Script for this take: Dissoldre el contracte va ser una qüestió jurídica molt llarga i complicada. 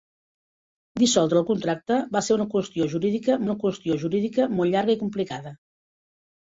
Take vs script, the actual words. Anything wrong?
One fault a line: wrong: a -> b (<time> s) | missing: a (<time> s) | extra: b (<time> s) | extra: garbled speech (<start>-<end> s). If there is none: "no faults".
extra: una qüestió jurídica (3.5 s)